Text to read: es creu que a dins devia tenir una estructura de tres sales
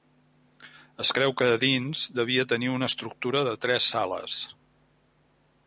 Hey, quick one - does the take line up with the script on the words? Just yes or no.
yes